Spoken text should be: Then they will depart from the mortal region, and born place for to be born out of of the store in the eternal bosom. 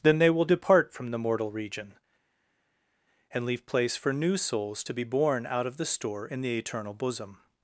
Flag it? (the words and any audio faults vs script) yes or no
yes